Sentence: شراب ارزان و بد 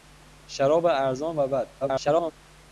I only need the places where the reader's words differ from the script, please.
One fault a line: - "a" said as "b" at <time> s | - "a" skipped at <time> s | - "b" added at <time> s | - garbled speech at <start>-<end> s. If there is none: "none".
- garbled speech at 1.8-2.3 s